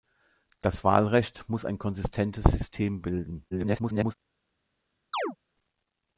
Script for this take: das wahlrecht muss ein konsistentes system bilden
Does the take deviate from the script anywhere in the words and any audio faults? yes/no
yes